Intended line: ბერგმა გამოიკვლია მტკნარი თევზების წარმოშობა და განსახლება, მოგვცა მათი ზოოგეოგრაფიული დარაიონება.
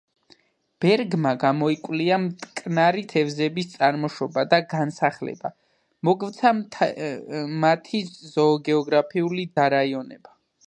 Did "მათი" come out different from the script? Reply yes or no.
no